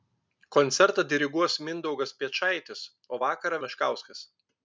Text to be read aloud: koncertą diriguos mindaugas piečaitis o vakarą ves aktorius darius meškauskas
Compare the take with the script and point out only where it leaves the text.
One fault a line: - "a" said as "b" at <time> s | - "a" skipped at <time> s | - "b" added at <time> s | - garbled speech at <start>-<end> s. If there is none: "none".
- "ves aktorius darius" skipped at 3.6 s